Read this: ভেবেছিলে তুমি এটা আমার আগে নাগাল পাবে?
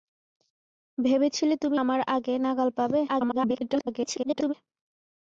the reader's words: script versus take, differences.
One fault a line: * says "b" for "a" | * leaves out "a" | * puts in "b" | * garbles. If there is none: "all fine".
* leaves out "এটা"
* garbles